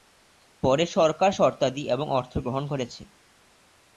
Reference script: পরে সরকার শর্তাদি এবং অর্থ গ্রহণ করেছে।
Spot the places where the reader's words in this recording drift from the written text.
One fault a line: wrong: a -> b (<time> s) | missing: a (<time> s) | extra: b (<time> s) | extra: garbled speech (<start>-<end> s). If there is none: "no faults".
no faults